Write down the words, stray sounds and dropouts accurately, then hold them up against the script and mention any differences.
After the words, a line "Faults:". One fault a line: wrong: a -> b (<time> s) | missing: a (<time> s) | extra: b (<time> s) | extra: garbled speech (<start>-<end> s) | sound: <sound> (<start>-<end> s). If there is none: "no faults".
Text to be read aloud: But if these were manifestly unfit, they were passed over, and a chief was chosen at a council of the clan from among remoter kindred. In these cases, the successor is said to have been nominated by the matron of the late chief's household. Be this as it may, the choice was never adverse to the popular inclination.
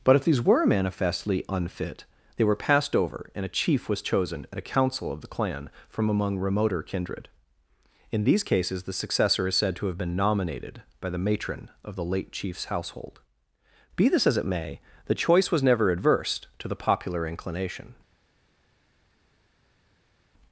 But if these were manifestly unfit, they were passed over, and a chief was chosen at a council of the clan from among remoter kindred. In these cases, the successor is said to have been nominated by the matron of the late chief's household. Be this as it may, the choice was never adverse to the popular inclination.
Faults:
no faults